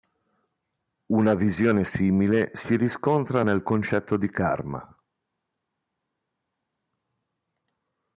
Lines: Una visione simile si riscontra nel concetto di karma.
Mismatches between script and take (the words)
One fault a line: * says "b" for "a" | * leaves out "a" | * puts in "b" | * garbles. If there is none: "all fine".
all fine